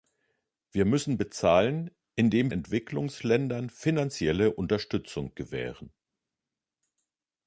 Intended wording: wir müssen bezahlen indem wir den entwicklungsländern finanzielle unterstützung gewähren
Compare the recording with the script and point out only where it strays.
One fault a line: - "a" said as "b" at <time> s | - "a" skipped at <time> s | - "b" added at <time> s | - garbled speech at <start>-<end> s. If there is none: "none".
- "wir den" skipped at 2.5 s